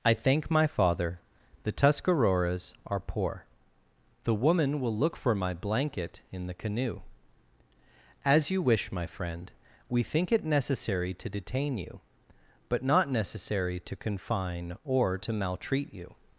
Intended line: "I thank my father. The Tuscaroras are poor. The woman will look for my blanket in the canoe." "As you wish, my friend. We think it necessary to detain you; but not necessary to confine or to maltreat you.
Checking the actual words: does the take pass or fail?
pass